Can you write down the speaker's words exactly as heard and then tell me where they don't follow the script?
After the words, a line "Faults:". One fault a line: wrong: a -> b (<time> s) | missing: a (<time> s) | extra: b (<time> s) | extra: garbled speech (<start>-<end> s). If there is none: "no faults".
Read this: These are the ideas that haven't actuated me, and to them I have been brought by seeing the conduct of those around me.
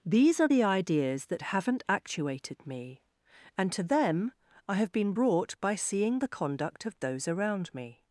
These are the ideas that haven't actuated me, and to them I have been brought by seeing the conduct of those around me.
Faults:
no faults